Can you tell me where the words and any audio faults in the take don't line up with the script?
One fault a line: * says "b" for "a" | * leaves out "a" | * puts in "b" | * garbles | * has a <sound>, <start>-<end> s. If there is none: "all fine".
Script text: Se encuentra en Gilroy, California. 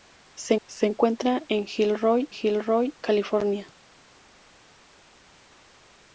* puts in "se"
* puts in "Gilroy"